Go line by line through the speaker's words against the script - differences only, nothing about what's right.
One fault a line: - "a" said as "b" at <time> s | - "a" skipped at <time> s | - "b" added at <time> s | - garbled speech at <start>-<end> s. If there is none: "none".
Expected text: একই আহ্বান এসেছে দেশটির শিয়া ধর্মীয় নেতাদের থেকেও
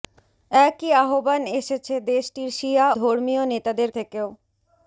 none